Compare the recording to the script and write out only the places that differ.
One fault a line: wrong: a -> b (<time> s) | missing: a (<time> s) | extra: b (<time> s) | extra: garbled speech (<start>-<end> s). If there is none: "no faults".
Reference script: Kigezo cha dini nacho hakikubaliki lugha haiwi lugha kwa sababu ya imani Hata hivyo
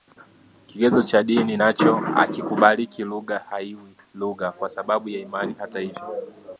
no faults